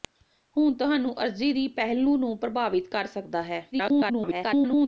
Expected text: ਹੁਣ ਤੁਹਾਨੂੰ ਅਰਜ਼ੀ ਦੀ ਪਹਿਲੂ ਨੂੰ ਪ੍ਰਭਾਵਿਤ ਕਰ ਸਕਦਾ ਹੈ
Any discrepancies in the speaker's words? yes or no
yes